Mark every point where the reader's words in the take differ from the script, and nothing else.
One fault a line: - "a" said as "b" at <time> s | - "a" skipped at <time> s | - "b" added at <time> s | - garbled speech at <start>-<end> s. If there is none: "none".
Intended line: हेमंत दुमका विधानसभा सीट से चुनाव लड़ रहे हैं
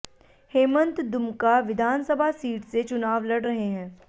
none